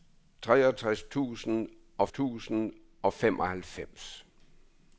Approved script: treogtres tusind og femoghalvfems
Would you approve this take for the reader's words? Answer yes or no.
no